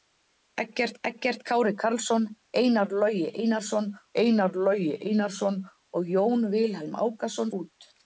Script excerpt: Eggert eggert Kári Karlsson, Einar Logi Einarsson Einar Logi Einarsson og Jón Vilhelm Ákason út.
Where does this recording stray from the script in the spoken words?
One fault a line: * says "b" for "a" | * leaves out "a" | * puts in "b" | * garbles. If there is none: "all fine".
all fine